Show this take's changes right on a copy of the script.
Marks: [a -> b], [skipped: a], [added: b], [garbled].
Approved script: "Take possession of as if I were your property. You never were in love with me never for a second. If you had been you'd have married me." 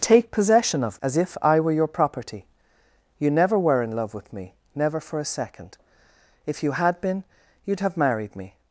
"Take possession of as if I were your property. You never were in love with me never for a second. If you had been you'd have married me."